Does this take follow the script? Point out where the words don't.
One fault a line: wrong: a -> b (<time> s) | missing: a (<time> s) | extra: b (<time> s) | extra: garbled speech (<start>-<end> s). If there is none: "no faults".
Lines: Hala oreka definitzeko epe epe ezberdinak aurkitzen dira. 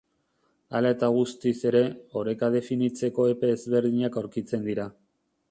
extra: eta guztiz ere (0.9 s)
missing: epe (3.5 s)